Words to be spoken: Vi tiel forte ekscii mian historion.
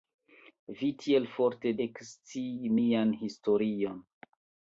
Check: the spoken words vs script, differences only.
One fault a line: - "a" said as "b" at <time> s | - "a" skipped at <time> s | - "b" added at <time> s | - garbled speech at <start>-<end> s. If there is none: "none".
none